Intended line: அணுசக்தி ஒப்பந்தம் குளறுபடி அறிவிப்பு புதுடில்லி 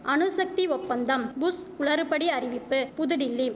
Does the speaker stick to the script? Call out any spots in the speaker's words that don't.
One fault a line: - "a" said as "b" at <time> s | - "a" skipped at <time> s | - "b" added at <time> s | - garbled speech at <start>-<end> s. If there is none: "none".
- "புஷ்" added at 1.4 s